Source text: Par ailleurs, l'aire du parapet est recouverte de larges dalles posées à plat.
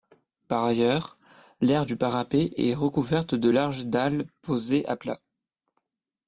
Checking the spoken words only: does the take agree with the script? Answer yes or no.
yes